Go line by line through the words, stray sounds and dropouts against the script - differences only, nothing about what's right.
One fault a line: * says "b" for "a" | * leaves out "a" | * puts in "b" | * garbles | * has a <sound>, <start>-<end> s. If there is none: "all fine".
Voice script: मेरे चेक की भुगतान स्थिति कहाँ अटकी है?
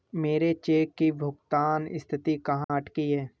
* has a dropout, 2.6-2.7 s